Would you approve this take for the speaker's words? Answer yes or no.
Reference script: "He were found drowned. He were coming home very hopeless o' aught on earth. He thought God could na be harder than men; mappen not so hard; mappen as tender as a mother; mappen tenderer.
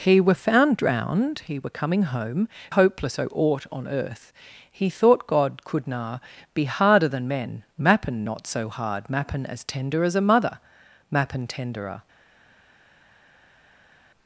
no